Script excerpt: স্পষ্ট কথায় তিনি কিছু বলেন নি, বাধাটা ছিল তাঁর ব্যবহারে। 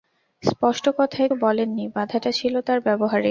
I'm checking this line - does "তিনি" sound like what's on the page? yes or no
no